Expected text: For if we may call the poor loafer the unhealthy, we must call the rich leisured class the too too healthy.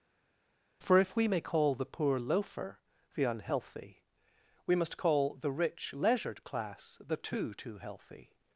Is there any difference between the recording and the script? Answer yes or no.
no